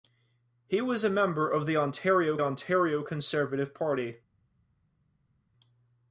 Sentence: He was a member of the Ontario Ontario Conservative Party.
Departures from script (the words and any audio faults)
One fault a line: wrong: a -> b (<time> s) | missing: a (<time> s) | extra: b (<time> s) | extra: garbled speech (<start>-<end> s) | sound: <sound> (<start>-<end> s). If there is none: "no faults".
no faults